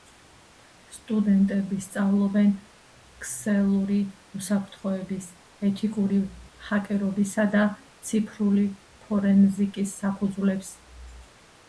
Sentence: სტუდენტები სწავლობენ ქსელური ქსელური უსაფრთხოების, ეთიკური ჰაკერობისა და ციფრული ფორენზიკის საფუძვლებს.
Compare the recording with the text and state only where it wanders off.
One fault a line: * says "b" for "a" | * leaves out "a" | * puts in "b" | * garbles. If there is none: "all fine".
* leaves out "ქსელური"